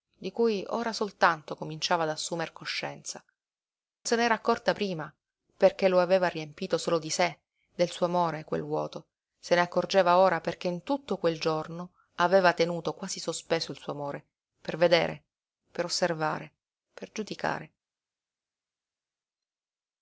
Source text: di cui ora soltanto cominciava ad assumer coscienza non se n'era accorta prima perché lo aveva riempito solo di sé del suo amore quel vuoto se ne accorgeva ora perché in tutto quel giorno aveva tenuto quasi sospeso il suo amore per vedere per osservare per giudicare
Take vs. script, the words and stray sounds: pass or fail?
fail